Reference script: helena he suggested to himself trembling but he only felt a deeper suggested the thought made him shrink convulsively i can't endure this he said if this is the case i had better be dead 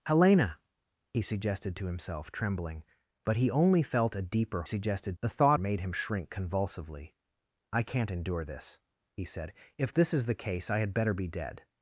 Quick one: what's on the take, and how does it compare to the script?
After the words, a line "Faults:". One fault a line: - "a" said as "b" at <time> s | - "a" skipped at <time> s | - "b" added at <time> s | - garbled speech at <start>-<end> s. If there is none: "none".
helena he suggested to himself trembling but he only felt a deeper suggested the thought made him shrink convulsively i can't endure this he said if this is the case i had better be dead
Faults:
none